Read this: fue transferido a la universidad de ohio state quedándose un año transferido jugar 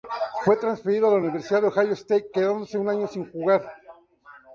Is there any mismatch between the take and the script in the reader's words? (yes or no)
yes